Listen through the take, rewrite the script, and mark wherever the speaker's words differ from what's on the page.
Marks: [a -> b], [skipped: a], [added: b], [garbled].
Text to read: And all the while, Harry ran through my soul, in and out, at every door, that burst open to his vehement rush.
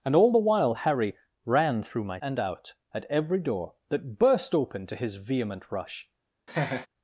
And all the while, Harry ran through my [skipped: soul, in] and out, at every door, that burst open to his vehement rush.